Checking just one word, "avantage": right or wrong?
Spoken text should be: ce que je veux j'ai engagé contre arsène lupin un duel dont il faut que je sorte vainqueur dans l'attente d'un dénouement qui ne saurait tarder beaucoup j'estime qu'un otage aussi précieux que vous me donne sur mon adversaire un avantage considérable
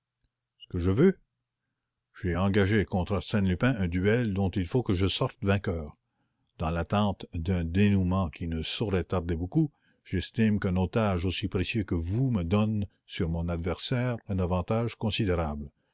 right